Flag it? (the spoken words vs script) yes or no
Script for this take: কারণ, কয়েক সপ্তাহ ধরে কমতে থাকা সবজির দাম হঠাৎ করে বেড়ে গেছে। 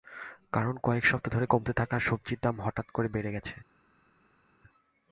no